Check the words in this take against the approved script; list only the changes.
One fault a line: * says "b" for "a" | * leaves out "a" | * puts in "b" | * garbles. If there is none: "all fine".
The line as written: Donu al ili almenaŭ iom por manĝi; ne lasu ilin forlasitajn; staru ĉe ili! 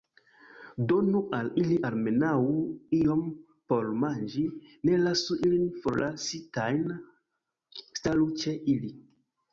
all fine